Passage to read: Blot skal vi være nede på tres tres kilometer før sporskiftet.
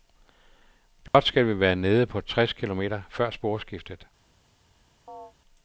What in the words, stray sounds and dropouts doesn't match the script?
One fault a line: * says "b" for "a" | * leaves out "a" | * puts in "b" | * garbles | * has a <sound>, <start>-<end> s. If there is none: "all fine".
* has a dropout, 1.1-1.1 s
* leaves out "tres"
* has a chirp, 5.1-5.3 s